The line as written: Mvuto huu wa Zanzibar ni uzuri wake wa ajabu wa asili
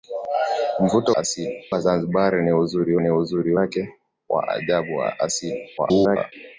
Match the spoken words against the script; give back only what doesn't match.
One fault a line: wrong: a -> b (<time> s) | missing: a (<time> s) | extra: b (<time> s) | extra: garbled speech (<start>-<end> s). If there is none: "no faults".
wrong: huu -> asili (1.1 s)
extra: ni uzuri (3.0 s)
extra: garbled speech (5.8-6.3 s)